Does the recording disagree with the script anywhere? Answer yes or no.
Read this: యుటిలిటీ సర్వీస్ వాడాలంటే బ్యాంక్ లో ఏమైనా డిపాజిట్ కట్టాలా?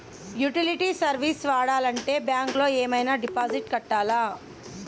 no